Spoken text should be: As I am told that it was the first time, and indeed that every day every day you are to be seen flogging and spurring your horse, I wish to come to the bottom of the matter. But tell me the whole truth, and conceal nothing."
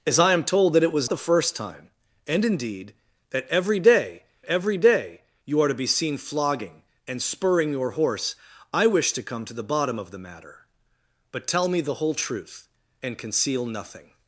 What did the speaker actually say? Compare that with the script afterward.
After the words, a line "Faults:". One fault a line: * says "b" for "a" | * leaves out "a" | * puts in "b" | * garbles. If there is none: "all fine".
As I am told that it was the first time, and indeed that every day every day you are to be seen flogging and spurring your horse, I wish to come to the bottom of the matter. But tell me the whole truth, and conceal nothing."
Faults:
all fine